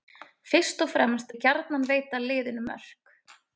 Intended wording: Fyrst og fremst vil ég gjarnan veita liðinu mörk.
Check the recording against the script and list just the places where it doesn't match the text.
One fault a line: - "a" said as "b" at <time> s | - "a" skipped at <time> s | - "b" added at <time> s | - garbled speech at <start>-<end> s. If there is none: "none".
- "vil" skipped at 1.4 s